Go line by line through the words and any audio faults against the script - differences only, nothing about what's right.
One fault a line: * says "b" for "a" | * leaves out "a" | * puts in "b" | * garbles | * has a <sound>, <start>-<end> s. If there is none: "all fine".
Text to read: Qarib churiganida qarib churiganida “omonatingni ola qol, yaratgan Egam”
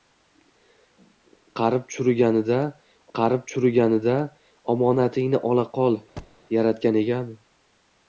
* has a thud, 6.2-6.4 s